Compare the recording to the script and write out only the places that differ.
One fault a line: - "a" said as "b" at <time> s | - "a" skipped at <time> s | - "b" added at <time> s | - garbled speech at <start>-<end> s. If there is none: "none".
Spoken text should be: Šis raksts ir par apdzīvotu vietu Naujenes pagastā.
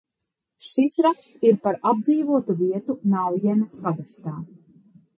none